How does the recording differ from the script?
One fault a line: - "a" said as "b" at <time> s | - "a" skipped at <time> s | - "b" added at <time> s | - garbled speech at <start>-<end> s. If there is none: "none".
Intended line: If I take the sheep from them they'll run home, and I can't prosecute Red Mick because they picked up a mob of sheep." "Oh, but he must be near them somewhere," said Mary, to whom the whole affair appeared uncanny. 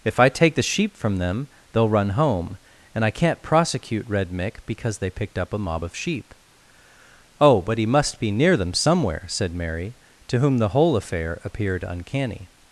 none